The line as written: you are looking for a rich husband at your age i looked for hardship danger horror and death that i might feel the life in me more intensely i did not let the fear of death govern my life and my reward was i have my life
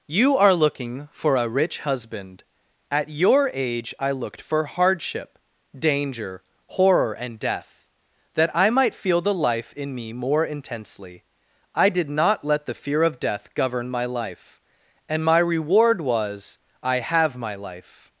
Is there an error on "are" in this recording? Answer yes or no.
no